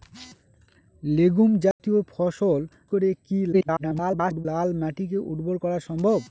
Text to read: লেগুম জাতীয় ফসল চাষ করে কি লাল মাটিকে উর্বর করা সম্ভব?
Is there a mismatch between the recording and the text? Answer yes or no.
yes